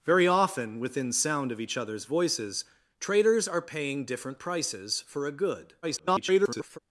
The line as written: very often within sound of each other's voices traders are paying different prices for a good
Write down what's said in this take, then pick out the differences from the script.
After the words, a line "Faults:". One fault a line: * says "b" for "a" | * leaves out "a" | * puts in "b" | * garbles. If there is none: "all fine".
very often within sound of each other's voices traders are paying different prices for a good [garbled]
Faults:
* garbles